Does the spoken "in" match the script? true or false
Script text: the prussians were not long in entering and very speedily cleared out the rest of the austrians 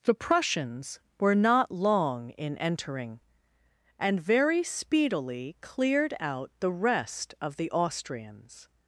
true